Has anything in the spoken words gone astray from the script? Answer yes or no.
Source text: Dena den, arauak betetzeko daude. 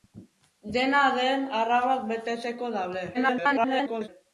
yes